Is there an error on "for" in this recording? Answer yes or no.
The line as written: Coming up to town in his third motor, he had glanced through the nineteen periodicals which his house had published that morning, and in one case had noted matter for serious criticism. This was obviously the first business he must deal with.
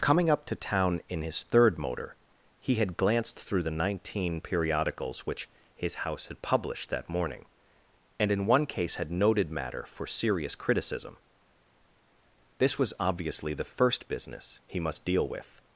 no